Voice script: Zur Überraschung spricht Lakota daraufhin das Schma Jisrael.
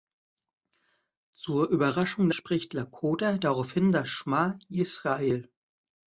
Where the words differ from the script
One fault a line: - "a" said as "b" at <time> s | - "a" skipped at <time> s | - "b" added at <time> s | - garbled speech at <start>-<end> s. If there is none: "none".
none